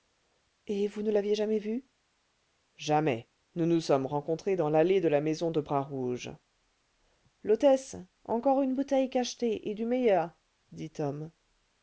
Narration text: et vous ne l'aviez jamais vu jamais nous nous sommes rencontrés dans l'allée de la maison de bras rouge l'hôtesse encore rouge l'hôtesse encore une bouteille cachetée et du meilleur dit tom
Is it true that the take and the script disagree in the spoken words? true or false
true